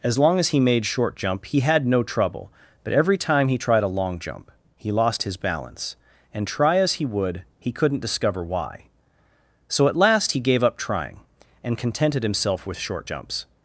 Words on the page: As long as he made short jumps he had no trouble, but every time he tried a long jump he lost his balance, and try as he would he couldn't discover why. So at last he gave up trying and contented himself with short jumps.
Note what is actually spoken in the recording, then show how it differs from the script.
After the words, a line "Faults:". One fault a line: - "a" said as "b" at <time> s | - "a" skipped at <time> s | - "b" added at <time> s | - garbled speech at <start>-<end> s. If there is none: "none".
As long as he made short jump he had no trouble, but every time he tried a long jump he lost his balance, and try as he would he couldn't discover why. So at last he gave up trying and contented himself with short jumps.
Faults:
- "jumps" said as "jump" at 1.1 s